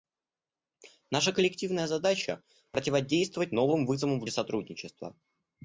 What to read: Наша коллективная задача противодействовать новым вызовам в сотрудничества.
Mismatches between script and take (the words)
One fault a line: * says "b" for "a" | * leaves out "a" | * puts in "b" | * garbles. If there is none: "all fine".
all fine